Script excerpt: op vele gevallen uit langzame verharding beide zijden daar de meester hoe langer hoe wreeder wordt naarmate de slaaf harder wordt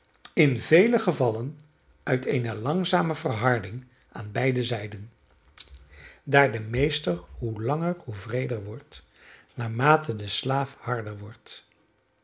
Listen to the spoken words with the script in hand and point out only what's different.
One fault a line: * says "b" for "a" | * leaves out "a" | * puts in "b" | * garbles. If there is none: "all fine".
* says "in" for "op"
* puts in "eene"
* puts in "aan"